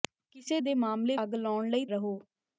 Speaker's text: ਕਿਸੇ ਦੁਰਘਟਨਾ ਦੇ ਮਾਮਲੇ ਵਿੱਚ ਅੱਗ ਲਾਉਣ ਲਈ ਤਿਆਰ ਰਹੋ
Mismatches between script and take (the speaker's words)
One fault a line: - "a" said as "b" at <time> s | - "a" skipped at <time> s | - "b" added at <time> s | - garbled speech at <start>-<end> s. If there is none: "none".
- "ਦੁਰਘਟਨਾ" skipped at 0.6 s
- "ਵਿੱਚ" skipped at 1.2 s
- "ਤਿਆਰ" skipped at 1.8 s